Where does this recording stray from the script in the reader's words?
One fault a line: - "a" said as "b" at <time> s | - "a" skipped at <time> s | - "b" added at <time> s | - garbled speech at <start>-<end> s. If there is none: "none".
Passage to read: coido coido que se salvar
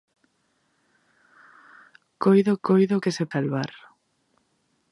none